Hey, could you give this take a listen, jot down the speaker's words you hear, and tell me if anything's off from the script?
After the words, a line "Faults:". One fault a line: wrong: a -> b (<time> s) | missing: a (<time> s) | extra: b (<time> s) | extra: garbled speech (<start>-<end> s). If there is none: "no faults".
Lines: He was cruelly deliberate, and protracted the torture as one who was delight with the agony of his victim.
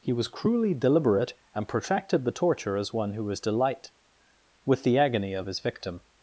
He was cruelly deliberate, and protracted the torture as one who was delight with the agony of his victim.
Faults:
no faults